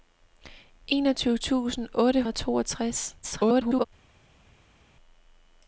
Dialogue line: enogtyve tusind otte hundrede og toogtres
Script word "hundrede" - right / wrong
wrong